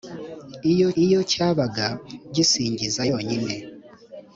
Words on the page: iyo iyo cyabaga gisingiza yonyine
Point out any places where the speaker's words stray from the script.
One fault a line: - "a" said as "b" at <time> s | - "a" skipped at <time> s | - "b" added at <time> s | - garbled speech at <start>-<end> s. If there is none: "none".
none